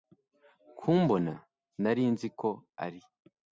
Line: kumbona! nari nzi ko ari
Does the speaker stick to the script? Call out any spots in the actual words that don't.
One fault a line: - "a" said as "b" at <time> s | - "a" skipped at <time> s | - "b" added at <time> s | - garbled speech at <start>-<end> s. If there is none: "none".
none